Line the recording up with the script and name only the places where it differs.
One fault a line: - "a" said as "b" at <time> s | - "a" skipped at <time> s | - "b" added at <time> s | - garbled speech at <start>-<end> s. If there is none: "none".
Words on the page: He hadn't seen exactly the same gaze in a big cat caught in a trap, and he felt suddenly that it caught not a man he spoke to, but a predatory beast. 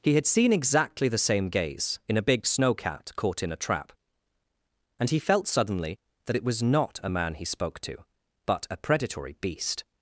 - "hadn't" said as "had" at 0.1 s
- "snow" added at 2.5 s
- "caught" said as "was" at 6.4 s